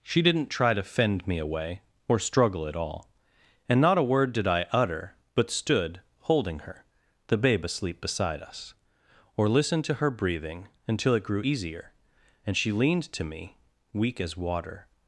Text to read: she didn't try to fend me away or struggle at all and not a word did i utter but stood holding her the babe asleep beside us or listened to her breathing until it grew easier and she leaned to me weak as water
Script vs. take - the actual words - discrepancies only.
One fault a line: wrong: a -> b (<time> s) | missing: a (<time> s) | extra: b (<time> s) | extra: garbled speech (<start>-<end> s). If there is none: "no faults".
no faults